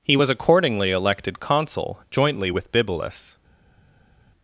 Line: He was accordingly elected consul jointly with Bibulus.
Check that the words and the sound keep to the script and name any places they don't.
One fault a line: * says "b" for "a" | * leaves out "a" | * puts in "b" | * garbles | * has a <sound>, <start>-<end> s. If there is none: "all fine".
all fine